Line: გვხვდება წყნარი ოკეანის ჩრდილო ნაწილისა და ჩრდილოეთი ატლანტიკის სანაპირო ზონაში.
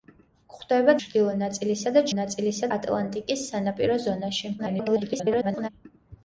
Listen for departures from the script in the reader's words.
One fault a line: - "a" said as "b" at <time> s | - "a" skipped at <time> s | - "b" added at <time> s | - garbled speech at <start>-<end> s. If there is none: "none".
- "წყნარი ოკეანის" skipped at 0.9 s
- "ჩრდილოეთი" said as "ნაწილისა" at 2.2 s
- garbled speech at 4.6-5.7 s